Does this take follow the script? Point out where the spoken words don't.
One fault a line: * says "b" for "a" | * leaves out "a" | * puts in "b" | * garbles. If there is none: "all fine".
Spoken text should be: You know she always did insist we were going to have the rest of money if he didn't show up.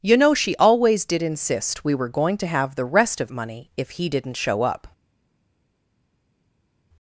all fine